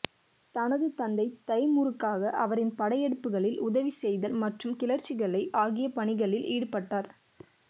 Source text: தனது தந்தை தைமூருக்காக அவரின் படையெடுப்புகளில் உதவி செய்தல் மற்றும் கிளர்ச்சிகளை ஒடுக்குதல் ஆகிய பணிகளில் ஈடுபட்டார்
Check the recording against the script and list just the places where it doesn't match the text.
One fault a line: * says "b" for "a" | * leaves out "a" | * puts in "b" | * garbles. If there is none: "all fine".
* leaves out "ஒடுக்குதல்"